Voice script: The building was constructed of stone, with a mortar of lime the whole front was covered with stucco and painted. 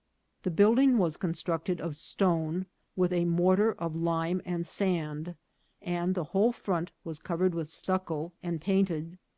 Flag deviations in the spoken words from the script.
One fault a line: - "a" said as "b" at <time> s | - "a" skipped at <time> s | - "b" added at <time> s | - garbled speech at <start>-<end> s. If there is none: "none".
- "and sand and" added at 4.5 s